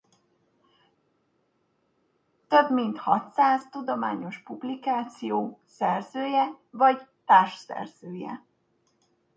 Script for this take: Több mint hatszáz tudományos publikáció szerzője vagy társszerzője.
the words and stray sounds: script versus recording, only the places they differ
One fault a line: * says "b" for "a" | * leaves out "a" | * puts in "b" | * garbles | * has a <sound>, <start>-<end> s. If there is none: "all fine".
all fine